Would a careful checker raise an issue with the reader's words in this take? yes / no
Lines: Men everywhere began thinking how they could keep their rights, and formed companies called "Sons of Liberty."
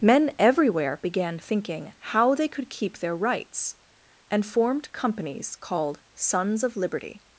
no